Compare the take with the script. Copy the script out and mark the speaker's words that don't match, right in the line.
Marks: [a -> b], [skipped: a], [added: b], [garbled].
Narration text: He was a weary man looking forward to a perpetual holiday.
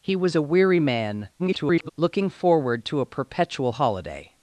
He was a weary man [garbled] looking forward to a perpetual holiday.